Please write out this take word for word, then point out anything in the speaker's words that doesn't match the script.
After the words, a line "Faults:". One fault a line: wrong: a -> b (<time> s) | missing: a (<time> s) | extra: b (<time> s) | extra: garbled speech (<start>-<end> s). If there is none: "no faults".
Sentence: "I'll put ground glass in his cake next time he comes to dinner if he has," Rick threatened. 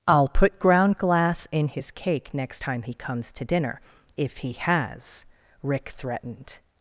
"I'll put ground glass in his cake next time he comes to dinner if he has," Rick threatened.
Faults:
no faults